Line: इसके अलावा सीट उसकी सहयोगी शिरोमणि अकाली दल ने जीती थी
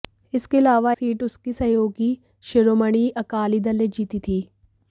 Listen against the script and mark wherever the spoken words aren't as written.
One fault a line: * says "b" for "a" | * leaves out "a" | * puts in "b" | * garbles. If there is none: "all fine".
all fine